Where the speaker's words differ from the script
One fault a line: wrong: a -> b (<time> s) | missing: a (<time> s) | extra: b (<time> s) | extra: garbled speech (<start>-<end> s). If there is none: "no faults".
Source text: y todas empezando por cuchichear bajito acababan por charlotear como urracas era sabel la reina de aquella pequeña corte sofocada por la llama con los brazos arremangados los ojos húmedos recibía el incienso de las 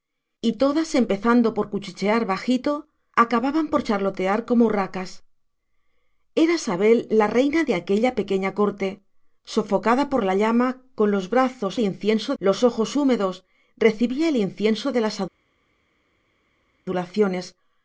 wrong: arremangados -> incienso (11.8 s)